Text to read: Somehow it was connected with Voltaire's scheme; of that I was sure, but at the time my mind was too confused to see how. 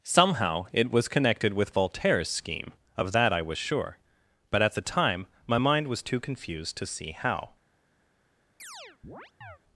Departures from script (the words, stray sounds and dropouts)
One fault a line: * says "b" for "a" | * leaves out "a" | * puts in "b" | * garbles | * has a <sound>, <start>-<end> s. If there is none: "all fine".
* has a chirp, 8.6-9.6 s